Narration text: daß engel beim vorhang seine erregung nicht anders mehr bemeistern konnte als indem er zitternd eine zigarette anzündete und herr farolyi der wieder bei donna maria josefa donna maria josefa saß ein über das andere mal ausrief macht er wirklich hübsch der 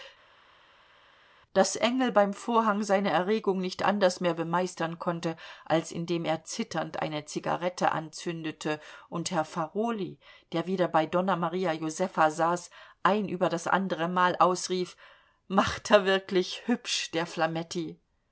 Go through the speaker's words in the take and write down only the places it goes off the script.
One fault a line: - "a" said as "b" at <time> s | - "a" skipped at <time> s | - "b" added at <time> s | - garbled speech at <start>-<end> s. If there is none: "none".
- "donna maria josefa" skipped at 12.3 s